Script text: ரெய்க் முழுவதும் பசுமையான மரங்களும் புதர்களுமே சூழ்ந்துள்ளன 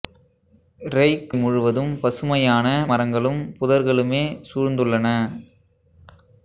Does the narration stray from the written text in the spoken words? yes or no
no